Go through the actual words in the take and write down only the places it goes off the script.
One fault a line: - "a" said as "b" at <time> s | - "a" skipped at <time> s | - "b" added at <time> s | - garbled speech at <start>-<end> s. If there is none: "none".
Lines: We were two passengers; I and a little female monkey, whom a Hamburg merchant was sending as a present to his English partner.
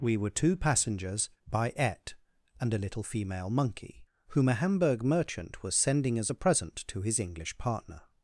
- "I" said as "by et" at 1.5 s